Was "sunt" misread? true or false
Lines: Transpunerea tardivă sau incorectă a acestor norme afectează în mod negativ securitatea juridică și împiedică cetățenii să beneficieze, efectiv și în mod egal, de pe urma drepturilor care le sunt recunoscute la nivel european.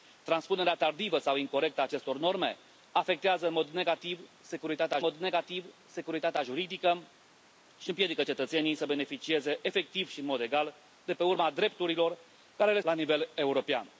true